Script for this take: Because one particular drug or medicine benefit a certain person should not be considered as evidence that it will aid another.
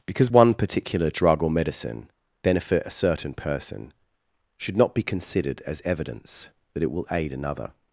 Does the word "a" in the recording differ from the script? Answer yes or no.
no